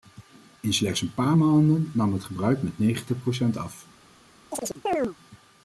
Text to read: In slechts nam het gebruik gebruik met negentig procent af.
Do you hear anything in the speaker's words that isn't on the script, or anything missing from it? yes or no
yes